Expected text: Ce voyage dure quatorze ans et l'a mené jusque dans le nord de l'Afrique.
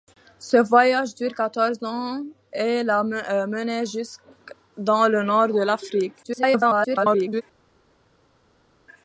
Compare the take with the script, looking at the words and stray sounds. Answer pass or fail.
fail